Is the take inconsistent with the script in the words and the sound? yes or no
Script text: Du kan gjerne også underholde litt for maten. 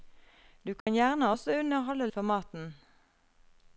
yes